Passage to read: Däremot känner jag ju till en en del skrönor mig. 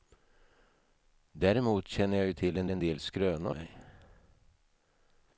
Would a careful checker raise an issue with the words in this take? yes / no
no